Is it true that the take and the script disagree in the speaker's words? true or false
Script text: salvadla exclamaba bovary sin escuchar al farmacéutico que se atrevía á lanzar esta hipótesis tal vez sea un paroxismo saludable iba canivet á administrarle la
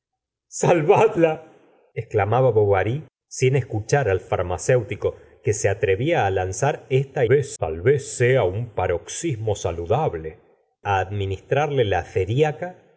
true